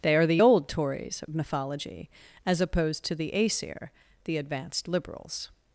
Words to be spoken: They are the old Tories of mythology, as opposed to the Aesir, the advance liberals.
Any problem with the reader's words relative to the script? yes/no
yes